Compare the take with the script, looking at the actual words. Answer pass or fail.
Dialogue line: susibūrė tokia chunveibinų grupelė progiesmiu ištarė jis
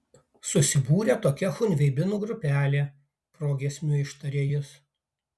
pass